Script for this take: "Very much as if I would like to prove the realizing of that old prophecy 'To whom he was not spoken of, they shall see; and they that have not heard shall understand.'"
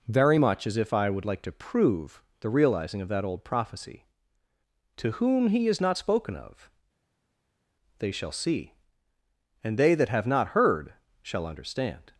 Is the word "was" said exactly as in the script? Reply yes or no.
no